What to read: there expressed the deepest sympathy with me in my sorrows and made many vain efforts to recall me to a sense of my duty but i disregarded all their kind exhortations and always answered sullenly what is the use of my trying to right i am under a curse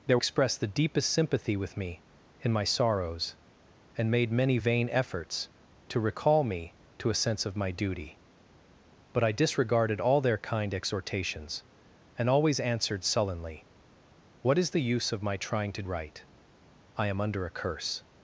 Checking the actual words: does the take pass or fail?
pass